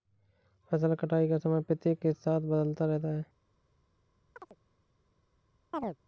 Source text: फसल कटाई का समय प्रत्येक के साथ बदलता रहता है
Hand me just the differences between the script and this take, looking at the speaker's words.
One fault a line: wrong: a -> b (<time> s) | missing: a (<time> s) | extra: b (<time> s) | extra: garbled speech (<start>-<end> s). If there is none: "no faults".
no faults